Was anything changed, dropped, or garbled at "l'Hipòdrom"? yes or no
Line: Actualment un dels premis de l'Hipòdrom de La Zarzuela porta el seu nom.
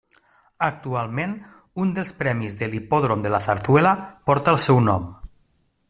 no